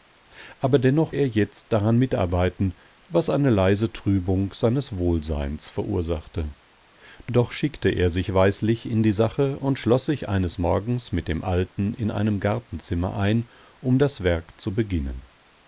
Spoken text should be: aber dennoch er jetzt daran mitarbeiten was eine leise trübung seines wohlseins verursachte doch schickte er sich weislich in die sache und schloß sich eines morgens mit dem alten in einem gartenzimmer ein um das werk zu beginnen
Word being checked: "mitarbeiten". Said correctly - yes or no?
yes